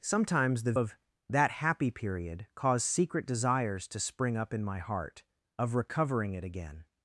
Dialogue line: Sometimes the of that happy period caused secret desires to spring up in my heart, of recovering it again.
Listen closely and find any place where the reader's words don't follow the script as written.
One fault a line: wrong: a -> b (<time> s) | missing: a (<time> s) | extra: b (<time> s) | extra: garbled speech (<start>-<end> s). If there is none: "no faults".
no faults